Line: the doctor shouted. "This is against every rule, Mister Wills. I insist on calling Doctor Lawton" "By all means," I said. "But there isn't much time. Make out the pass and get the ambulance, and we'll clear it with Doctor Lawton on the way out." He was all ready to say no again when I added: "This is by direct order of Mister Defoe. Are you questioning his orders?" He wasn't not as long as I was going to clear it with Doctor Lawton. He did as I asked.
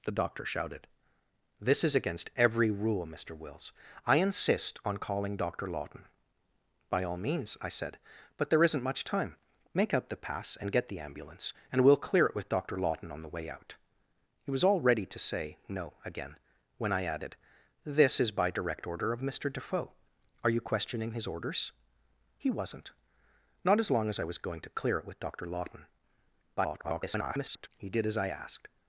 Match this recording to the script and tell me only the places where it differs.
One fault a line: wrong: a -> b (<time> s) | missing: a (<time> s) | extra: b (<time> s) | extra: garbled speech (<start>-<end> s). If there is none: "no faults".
extra: garbled speech (26.6-27.7 s)